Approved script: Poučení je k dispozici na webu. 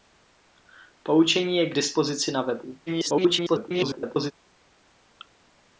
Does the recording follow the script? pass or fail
fail